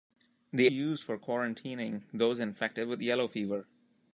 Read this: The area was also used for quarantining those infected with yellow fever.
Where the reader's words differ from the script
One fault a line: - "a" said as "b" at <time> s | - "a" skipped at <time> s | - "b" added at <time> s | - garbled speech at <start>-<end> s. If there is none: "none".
- "area was also" skipped at 0.7 s